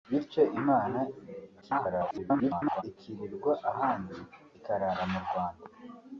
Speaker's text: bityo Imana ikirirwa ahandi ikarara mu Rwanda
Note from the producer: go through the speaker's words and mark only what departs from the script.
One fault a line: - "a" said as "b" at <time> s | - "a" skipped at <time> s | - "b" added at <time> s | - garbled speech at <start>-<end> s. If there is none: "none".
- garbled speech at 1.6-2.8 s